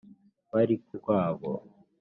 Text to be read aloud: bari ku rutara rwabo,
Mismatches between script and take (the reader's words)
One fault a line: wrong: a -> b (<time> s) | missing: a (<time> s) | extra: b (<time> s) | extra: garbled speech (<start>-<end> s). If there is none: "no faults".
missing: rutara (0.9 s)